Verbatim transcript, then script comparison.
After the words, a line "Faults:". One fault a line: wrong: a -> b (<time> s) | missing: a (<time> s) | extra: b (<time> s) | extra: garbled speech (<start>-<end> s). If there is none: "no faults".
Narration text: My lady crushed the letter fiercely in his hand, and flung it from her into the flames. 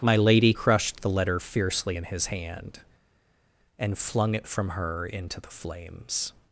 My lady crushed the letter fiercely in his hand, and flung it from her into the flames.
Faults:
no faults